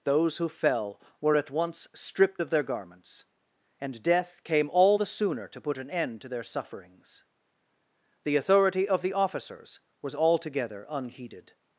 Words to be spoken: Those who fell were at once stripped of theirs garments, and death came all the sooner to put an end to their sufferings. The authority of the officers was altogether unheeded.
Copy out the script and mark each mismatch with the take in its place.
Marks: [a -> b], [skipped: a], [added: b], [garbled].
Those who fell were at once stripped of [theirs -> their] garments, and death came all the sooner to put an end to their sufferings. The authority of the officers was altogether unheeded.